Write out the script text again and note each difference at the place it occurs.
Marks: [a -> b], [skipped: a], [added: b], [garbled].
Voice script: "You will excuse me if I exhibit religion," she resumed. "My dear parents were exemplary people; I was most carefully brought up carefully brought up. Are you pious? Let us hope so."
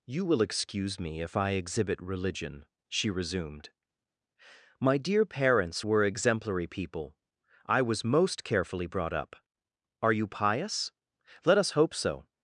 "You will excuse me if I exhibit religion," she resumed. "My dear parents were exemplary people; I was most carefully brought up [skipped: carefully brought up.] Are you pious? Let us hope so."